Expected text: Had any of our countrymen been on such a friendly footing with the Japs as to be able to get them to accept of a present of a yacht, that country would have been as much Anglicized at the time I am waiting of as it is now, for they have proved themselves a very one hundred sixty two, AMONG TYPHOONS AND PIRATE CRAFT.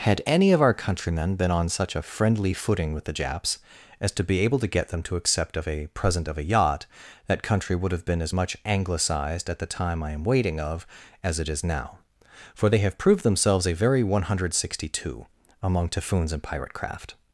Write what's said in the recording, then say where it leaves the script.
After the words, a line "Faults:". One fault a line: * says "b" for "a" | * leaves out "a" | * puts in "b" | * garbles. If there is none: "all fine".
Had any of our countrymen been on such a friendly footing with the Japs as to be able to get them to accept of a present of a yacht, that country would have been as much Anglicized at the time I am waiting of as it is now, for they have proved themselves a very one hundred sixty two, AMONG TYPHOONS AND PIRATE CRAFT.
Faults:
all fine